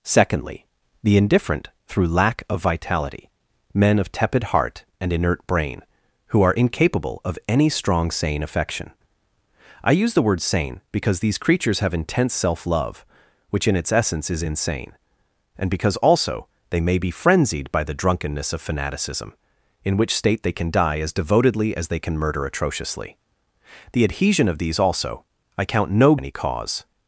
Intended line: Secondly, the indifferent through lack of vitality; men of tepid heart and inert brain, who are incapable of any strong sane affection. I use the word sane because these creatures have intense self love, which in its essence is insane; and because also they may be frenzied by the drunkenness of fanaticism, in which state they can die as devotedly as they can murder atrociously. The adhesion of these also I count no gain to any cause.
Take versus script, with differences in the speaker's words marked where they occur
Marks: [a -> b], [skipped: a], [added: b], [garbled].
Secondly, the indifferent through lack of vitality; men of tepid heart and inert brain, who are incapable of any strong sane affection. I use the word sane because these creatures have intense self love, which in its essence is insane; and because also they may be frenzied by the drunkenness of fanaticism, in which state they can die as devotedly as they can murder atrociously. The adhesion of these also I count no [skipped: gain to] any cause.